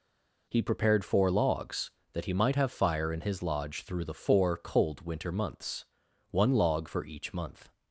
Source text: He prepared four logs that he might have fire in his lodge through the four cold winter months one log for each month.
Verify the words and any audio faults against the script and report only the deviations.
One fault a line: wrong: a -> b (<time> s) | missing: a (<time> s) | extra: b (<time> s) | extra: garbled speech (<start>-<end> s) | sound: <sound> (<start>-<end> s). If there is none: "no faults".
no faults